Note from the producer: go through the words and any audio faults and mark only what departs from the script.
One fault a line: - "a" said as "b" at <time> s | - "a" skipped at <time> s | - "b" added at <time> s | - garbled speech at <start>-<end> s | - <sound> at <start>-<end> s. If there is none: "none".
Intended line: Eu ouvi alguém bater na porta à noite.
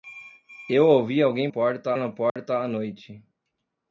- "bater" said as "porta" at 1.5 s
- dropout at 2.3-2.4 s